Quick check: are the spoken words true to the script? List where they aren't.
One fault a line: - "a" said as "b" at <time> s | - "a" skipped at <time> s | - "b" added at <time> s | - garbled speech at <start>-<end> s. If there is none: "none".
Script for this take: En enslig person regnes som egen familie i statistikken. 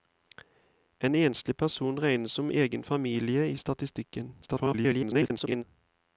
- garbled speech at 4.4-5.6 s